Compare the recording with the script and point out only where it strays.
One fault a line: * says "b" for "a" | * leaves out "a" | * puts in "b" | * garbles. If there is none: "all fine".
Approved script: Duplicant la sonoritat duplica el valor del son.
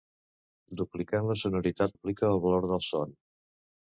all fine